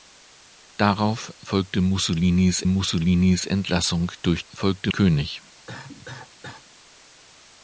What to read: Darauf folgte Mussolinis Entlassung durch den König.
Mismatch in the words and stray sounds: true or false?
true